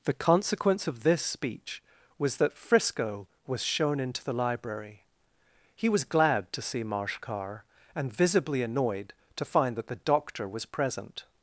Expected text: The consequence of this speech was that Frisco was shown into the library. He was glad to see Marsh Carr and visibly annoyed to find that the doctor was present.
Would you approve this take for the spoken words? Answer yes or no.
yes